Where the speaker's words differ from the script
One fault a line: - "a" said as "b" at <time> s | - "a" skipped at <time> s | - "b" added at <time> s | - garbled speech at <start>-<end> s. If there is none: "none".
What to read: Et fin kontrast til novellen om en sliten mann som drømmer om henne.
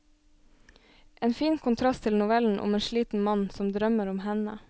- "Et" said as "En" at 1.2 s